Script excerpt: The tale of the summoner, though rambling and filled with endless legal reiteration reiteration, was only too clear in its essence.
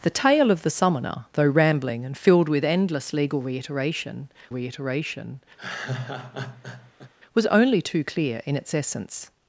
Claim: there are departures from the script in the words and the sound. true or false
true